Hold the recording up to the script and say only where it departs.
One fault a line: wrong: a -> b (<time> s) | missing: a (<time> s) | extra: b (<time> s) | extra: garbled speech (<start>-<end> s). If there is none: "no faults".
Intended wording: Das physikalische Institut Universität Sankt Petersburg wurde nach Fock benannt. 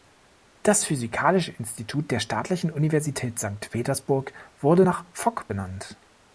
extra: der Staatlichen (2.1 s)